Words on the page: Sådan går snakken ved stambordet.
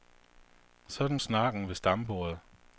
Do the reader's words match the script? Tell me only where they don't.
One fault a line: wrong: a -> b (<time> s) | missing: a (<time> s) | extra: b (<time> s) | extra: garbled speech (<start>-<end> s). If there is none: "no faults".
missing: går (1.2 s)